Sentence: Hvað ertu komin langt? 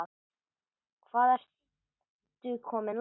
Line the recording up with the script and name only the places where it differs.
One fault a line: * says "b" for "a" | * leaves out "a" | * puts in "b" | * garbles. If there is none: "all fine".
all fine